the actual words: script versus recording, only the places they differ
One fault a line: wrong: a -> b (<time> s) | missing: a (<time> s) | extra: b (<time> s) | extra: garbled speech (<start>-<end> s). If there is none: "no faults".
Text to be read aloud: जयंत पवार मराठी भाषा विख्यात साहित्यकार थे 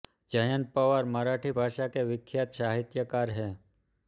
extra: के (1.9 s)
wrong: थे -> हैं (3.3 s)